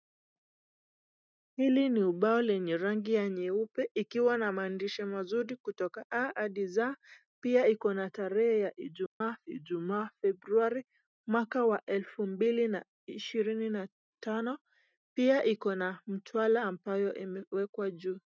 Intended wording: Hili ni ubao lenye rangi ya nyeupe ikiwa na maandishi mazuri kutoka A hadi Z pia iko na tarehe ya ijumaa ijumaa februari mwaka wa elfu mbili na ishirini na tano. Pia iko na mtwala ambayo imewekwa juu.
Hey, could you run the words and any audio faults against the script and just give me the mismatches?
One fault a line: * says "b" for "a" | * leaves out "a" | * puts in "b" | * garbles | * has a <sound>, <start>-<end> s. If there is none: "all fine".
* has a dropout, 9.1-9.2 s